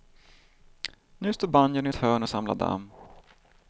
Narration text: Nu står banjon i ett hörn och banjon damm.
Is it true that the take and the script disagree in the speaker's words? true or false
true